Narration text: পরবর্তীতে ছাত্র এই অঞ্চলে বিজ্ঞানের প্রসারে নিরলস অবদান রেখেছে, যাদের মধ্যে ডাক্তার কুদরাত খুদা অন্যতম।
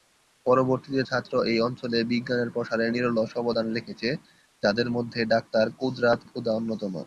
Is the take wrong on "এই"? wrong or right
right